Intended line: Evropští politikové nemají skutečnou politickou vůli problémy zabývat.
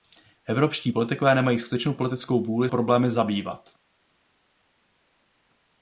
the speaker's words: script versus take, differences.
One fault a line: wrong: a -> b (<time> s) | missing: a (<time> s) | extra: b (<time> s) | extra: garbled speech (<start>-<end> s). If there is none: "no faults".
no faults